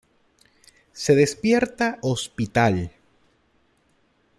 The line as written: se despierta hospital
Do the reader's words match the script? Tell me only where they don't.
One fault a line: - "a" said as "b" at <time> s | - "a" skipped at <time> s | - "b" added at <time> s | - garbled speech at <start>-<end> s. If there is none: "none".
none